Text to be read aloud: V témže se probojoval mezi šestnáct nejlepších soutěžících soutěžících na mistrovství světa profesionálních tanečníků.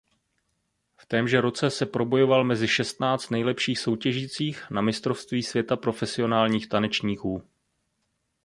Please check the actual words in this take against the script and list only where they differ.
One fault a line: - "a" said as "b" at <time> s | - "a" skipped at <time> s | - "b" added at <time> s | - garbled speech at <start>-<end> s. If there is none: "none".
- "roce" added at 1.4 s
- "soutěžících" skipped at 4.7 s